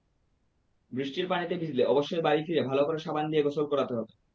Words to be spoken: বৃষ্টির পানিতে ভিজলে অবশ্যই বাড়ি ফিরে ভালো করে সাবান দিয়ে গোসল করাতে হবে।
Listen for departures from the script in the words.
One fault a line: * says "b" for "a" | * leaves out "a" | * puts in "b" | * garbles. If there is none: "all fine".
all fine